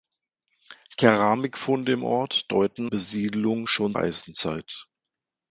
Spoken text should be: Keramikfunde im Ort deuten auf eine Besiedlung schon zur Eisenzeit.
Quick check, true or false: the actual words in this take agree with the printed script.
false